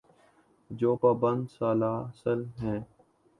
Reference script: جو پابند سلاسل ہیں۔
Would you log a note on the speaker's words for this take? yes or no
no